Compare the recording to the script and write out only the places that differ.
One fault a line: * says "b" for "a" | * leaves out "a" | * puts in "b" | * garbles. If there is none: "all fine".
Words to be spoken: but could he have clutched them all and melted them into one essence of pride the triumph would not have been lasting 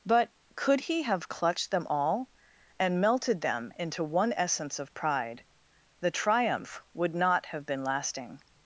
all fine